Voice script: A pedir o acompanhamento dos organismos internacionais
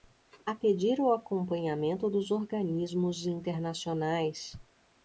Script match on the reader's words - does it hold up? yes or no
yes